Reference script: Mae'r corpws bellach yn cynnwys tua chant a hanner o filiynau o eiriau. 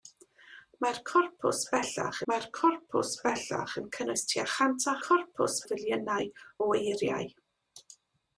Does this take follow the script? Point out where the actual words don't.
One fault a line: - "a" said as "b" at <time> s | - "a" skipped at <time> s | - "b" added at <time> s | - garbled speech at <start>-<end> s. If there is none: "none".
- "mae'r corpws bellach" added at 2.3 s
- "hanner" said as "corpws" at 5.0 s